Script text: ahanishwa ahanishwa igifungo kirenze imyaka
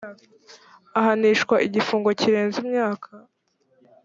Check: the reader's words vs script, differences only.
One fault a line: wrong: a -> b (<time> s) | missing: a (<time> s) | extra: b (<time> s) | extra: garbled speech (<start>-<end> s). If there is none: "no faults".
missing: ahanishwa (1.6 s)